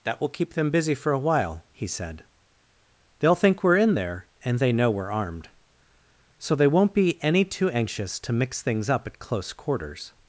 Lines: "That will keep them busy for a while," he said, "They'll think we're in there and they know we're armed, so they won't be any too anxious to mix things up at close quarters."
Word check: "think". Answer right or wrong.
right